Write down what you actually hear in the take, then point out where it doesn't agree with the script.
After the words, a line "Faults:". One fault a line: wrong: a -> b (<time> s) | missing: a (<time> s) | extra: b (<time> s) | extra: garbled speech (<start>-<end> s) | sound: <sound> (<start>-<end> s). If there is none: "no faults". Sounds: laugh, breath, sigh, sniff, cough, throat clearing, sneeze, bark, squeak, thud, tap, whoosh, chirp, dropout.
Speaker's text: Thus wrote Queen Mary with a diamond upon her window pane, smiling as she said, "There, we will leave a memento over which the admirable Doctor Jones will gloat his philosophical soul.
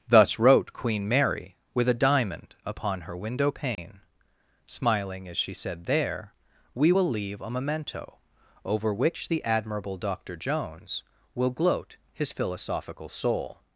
Thus wrote Queen Mary with a diamond upon her window pane, smiling as she said, "There, we will leave a memento over which the admirable Doctor Jones will gloat his philosophical soul.
Faults:
sound: dropout (3.7-3.8 s)